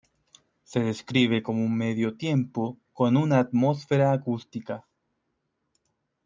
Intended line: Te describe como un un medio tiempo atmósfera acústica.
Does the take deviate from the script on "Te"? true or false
true